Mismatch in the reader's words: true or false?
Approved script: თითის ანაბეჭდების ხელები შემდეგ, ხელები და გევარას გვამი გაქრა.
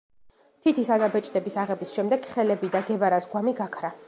true